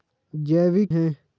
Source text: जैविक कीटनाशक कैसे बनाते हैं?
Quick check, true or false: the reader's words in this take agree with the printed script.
false